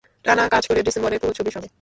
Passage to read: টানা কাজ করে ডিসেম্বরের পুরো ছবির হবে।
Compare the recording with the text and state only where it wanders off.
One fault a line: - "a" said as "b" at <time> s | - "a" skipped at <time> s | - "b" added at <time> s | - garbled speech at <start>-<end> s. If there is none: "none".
none